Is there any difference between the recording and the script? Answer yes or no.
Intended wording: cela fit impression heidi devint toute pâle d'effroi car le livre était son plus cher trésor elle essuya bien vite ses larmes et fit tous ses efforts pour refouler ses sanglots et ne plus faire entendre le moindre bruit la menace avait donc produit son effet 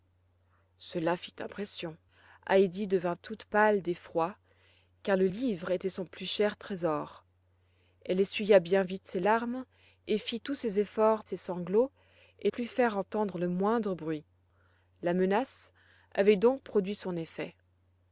yes